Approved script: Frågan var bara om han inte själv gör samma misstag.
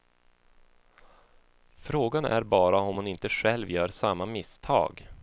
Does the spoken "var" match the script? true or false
false